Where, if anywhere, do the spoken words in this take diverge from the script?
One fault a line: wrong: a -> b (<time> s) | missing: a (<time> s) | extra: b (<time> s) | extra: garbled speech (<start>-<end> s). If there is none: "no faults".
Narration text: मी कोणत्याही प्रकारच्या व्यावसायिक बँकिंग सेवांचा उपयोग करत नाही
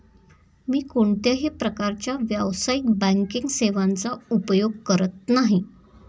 no faults